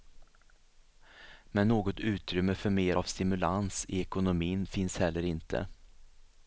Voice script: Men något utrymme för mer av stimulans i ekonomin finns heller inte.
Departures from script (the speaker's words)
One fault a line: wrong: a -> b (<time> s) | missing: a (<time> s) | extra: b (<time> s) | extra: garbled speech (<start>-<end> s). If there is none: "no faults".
no faults